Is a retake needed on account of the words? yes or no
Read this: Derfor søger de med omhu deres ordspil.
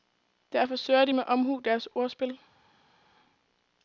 no